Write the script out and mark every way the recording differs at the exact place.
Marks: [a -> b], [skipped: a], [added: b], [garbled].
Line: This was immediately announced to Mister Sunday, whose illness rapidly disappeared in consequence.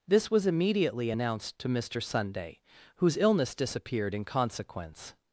This was immediately announced to Mister Sunday, whose illness [skipped: rapidly] disappeared in consequence.